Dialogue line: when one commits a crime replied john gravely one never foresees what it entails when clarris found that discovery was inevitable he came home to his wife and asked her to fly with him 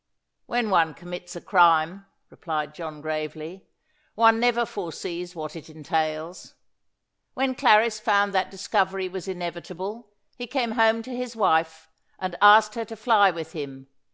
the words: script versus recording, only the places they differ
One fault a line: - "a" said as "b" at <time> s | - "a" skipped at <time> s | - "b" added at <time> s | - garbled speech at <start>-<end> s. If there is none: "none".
none